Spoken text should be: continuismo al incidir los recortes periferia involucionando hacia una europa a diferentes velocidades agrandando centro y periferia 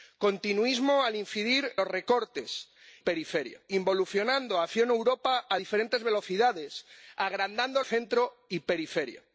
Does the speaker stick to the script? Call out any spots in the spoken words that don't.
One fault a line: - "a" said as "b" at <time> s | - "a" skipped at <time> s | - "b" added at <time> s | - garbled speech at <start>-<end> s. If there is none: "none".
none